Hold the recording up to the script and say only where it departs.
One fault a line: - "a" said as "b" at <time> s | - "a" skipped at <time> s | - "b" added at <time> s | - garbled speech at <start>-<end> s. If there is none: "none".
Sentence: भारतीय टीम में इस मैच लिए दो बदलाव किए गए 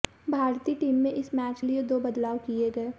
none